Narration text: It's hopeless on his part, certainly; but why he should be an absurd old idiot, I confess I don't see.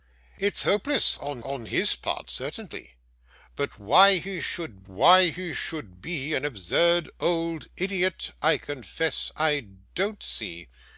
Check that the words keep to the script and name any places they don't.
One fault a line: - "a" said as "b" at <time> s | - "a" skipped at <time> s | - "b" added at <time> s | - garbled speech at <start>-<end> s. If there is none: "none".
- "on" added at 1.4 s
- "why he should" added at 4.9 s